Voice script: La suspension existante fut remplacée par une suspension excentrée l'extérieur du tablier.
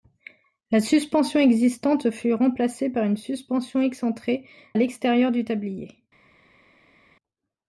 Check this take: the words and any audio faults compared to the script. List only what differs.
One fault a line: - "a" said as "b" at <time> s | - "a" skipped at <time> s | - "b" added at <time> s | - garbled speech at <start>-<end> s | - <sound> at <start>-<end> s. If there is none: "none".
none